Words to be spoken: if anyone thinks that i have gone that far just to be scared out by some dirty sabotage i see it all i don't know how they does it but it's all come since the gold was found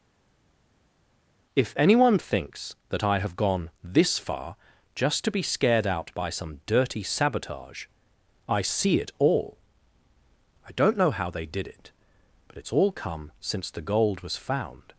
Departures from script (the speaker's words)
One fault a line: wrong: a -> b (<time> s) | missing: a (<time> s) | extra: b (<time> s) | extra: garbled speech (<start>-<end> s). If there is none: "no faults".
wrong: that -> this (3.8 s)
wrong: does -> did (11.5 s)